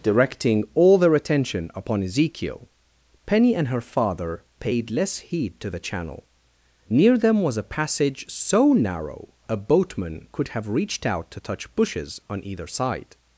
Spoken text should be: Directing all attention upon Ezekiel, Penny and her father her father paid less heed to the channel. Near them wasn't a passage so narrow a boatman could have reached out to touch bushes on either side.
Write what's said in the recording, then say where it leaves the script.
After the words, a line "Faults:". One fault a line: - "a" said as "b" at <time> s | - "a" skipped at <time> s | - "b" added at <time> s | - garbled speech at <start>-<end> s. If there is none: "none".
Directing all their attention upon Ezekiel, Penny and her father paid less heed to the channel. Near them was a passage so narrow a boatman could have reached out to touch bushes on either side.
Faults:
- "their" added at 1.0 s
- "her father" skipped at 4.4 s
- "wasn't" said as "was" at 7.4 s